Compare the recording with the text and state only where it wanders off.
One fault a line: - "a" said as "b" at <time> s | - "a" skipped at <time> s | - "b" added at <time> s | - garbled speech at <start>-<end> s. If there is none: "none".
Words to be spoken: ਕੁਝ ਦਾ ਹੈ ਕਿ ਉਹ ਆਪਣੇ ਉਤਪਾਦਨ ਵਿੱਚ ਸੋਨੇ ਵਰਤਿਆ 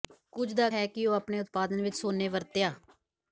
none